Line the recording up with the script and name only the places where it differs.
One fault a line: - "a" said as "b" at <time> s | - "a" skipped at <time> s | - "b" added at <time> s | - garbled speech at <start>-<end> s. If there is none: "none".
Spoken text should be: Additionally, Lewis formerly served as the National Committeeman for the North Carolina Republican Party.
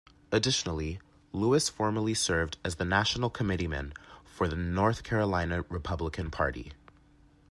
none